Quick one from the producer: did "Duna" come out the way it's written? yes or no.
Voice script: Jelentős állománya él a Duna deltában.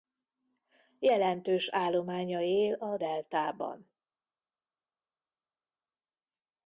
no